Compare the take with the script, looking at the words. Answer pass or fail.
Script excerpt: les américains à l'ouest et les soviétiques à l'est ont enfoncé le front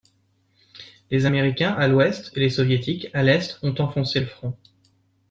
pass